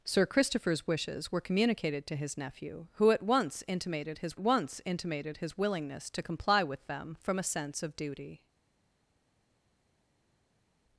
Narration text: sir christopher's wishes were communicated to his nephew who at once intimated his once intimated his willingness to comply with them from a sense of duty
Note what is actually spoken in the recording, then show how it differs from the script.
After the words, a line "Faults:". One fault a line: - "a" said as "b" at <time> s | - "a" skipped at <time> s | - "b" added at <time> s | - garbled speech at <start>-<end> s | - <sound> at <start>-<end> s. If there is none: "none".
sir christopher's wishes were communicated to his nephew who at once intimated his once intimated his willingness to comply with them from a sense of duty
Faults:
none